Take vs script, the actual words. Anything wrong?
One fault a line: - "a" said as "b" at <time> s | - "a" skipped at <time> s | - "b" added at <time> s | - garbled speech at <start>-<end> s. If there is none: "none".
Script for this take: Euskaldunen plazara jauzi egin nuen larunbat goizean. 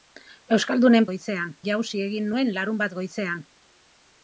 - "plazara" said as "goizean" at 1.1 s